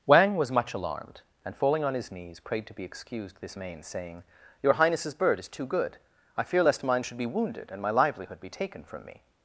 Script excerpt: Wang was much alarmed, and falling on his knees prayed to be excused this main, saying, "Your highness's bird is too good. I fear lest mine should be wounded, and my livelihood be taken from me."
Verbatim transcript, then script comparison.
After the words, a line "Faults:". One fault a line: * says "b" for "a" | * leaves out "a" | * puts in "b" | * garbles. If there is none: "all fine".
Wang was much alarmed, and falling on his knees prayed to be excused this main, saying, "Your highness's bird is too good. I fear lest mine should be wounded, and my livelihood be taken from me."
Faults:
all fine